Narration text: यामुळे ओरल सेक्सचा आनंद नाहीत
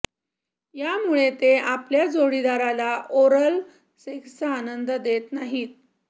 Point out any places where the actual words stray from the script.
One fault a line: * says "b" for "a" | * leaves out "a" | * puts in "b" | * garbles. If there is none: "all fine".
* puts in "ते आपल्या जोडीदाराला"
* puts in "देत"